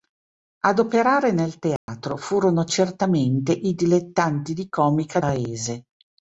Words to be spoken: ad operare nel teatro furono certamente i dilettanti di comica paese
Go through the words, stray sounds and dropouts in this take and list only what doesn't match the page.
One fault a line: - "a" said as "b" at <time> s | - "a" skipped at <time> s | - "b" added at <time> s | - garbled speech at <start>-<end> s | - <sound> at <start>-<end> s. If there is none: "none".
- dropout at 1.8-1.9 s